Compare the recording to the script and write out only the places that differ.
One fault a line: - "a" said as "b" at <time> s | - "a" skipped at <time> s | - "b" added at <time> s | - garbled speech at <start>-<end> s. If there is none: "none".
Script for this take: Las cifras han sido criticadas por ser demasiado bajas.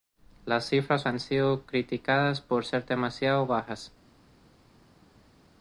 none